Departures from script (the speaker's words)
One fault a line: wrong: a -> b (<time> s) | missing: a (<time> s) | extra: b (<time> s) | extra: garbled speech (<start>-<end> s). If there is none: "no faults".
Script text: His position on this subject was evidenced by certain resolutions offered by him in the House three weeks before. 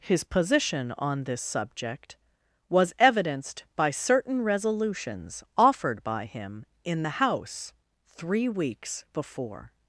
no faults